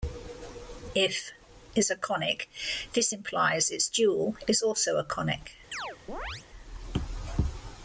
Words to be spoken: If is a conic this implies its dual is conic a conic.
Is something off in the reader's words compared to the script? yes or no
yes